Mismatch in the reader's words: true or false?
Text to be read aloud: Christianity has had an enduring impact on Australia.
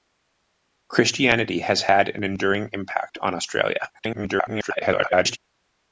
true